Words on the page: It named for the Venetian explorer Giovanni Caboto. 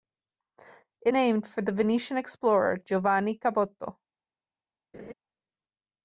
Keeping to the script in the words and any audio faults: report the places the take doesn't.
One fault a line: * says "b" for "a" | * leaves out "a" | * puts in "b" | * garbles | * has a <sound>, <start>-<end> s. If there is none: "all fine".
* has a laugh, 4.9-5.1 s